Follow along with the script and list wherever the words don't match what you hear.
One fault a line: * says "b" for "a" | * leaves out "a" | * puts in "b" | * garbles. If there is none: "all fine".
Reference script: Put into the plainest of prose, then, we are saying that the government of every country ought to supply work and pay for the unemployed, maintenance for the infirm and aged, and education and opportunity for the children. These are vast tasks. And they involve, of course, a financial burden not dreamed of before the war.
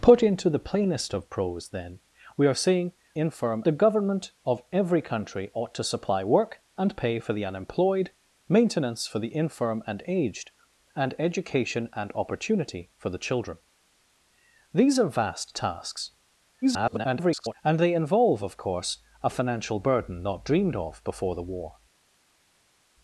* says "infirm" for "that"
* garbles